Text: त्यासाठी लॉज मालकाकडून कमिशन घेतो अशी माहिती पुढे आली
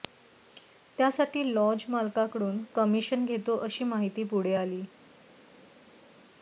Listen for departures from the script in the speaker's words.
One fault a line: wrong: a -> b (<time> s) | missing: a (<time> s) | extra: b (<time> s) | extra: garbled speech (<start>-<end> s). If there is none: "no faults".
no faults